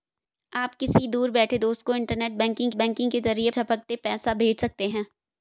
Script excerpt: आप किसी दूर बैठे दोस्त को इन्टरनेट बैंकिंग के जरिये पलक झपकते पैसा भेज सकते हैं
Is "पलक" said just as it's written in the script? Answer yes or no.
no